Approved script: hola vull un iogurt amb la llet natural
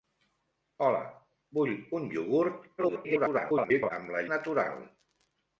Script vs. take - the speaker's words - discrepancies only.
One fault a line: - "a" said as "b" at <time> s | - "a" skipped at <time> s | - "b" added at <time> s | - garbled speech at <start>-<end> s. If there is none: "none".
- garbled speech at 2.8-3.9 s
- "llet" skipped at 4.2 s